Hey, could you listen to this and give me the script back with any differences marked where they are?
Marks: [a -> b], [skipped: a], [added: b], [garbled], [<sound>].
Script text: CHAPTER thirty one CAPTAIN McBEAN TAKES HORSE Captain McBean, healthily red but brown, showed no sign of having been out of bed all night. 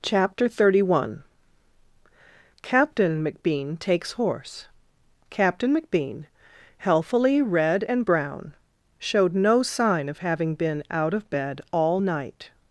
CHAPTER thirty one CAPTAIN McBEAN TAKES HORSE Captain McBean, healthily red [but -> and] brown, showed no sign of having been out of bed all night.